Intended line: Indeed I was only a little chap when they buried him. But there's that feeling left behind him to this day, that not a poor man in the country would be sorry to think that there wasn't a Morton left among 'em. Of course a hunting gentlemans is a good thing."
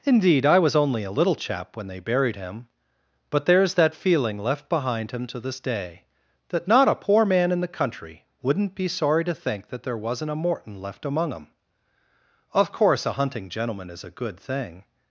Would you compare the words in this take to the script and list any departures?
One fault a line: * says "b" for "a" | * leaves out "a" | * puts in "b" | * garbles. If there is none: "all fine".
* says "wouldn't" for "would"
* says "gentleman" for "gentlemans"